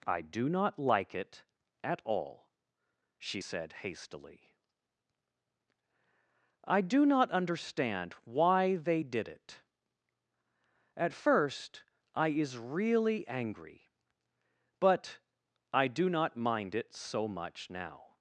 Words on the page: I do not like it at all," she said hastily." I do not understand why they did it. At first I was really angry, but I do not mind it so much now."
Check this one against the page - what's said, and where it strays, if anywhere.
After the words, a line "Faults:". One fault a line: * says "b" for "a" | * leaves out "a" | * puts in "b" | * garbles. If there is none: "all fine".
I do not like it at all," she said hastily." I do not understand why they did it. At first I is really angry, but I do not mind it so much now."
Faults:
* says "is" for "was"